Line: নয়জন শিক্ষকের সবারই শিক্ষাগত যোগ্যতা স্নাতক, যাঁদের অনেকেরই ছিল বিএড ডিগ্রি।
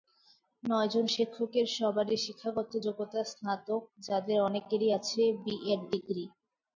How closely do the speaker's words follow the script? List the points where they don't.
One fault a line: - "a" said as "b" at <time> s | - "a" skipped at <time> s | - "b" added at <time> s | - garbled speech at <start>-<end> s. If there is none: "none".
- "ছিল" said as "আছে" at 5.0 s